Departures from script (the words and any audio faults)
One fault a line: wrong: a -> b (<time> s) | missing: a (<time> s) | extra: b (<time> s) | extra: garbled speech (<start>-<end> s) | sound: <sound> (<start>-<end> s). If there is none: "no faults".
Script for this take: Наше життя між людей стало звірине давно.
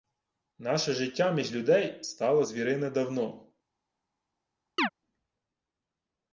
sound: chirp (4.8-4.9 s)